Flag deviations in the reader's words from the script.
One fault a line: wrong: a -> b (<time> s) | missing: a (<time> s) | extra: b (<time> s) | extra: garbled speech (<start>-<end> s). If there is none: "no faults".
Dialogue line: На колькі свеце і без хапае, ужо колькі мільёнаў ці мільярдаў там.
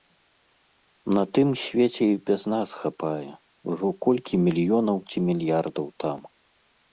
wrong: колькі -> тым (1.4 s)
extra: нас (2.5 s)